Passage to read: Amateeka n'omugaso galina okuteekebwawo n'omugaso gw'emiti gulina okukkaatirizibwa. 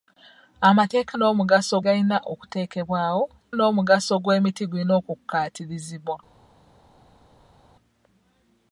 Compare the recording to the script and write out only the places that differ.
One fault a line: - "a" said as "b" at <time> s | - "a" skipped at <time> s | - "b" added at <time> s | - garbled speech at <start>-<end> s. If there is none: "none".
none